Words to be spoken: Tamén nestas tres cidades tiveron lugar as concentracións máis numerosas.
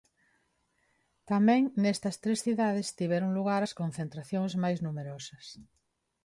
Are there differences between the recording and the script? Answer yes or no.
no